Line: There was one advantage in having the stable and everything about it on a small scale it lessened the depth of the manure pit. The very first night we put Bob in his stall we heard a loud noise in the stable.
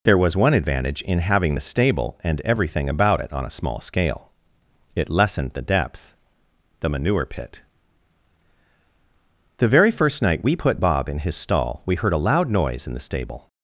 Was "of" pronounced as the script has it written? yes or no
no